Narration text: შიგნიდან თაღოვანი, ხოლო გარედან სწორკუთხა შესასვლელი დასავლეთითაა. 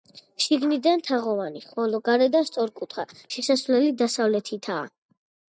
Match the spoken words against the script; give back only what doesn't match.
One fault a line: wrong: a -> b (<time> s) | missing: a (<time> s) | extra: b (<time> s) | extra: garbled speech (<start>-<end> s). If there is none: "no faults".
no faults